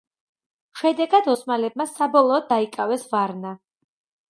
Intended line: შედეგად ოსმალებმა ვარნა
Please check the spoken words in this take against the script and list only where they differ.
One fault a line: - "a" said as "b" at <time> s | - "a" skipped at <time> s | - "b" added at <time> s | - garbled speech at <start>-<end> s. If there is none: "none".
- "საბოლოოდ დაიკავეს" added at 2.0 s